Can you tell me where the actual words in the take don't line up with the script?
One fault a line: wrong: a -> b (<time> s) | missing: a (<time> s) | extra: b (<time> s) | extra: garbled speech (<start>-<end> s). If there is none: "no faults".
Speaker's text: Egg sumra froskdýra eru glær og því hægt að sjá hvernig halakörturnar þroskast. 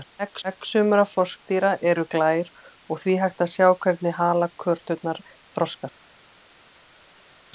extra: egg (0.5 s)